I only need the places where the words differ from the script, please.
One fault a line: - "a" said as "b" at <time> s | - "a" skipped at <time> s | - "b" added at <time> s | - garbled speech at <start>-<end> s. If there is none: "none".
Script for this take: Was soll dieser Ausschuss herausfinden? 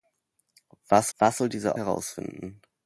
- "was" added at 1.2 s
- "Ausschuss" skipped at 1.8 s